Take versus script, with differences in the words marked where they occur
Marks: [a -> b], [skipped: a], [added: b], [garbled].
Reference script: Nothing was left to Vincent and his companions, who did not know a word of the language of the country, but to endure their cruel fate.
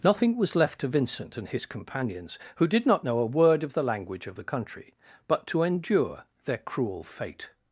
Nothing was left to Vincent and his companions, who did not know a word of the language of the country, but to endure their cruel fate.